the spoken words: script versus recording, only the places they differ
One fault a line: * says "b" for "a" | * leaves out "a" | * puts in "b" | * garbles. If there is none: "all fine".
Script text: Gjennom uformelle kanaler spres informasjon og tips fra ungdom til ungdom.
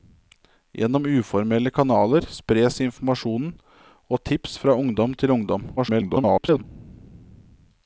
* garbles